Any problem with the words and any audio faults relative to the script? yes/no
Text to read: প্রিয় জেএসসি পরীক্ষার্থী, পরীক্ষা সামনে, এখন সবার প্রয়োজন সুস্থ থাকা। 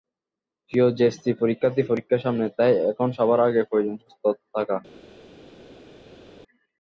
yes